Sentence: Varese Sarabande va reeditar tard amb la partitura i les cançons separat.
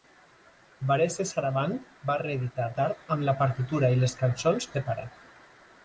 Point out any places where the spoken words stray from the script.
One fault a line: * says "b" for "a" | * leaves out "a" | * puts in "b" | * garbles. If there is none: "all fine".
all fine